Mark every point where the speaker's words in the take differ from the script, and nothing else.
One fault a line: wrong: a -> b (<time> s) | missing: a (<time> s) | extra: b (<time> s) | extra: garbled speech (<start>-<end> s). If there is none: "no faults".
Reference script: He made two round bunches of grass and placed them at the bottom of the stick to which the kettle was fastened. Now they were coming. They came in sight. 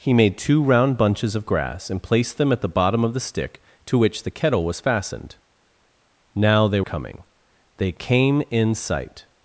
missing: were (6.8 s)